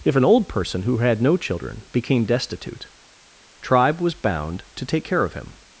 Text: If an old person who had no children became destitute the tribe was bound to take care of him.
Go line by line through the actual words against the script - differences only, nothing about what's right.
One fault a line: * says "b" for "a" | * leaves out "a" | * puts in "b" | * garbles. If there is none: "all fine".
* leaves out "the"